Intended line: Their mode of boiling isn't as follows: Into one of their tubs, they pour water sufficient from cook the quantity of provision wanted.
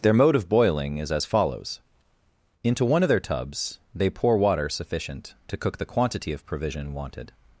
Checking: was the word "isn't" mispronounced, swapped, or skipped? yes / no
yes